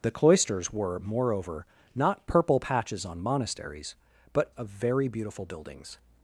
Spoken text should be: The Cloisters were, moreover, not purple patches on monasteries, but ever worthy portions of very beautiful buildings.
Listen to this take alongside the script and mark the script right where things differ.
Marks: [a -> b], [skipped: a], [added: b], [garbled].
The Cloisters were, moreover, not purple patches on monasteries, but [skipped: ever worthy portions] of very beautiful buildings.